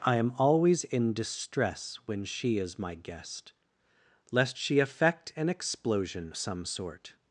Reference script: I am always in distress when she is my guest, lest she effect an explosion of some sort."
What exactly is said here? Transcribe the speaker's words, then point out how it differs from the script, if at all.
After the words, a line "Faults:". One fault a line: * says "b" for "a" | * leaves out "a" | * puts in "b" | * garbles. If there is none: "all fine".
I am always in distress when she is my guest, lest she effect an explosion some sort."
Faults:
* leaves out "of"